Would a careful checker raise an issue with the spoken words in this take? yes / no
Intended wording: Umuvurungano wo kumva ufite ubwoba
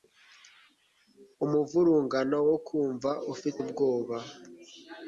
no